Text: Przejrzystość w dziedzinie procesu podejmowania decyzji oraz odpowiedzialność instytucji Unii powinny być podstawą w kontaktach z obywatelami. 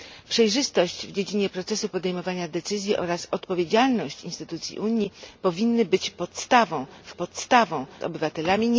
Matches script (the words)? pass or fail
fail